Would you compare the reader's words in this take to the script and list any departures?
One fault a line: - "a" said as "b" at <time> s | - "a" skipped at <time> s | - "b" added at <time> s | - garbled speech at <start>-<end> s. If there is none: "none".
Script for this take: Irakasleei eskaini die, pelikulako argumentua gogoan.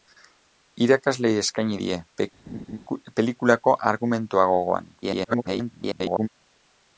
- garbled speech at 5.0-6.3 s